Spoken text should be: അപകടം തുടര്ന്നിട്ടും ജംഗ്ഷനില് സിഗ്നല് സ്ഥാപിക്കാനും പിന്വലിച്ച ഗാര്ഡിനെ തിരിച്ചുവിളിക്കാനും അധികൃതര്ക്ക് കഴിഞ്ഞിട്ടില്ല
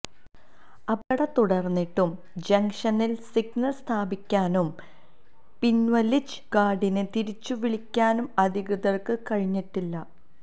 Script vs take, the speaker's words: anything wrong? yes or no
no